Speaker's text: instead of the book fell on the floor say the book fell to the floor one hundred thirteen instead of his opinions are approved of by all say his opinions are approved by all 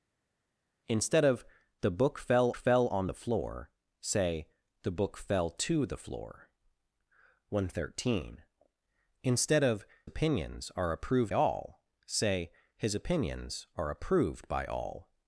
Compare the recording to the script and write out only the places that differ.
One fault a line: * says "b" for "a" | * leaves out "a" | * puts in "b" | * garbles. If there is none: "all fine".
* puts in "fell"
* leaves out "his"
* leaves out "of by"